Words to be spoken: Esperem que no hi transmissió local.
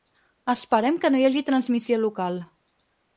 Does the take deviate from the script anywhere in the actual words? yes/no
yes